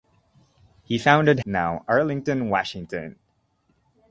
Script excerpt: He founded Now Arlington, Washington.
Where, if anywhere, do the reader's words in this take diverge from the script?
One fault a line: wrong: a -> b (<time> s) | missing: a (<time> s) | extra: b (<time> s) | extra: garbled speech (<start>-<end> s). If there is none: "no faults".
no faults